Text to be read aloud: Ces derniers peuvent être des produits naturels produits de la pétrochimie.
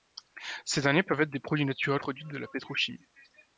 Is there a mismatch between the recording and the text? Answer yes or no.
no